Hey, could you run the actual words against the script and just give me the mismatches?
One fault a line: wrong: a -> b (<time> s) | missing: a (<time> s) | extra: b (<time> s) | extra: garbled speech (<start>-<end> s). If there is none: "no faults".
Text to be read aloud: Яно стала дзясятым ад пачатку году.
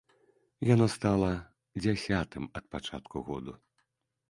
no faults